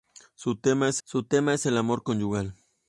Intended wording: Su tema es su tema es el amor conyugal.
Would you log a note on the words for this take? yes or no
no